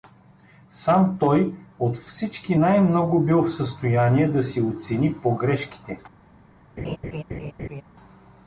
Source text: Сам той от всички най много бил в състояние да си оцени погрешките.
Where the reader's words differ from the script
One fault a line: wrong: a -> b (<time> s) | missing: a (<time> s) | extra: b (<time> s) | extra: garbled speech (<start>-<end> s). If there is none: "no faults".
no faults